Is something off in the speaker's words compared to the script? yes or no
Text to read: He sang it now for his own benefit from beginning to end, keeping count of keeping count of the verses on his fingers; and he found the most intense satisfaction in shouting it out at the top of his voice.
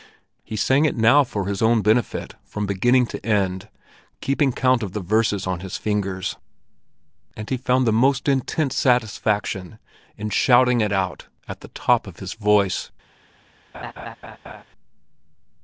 yes